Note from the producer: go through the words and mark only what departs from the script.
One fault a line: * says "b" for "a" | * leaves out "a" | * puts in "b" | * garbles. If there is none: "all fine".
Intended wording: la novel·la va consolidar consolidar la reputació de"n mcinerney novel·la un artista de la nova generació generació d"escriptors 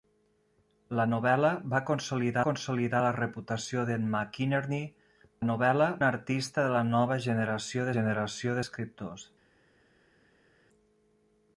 all fine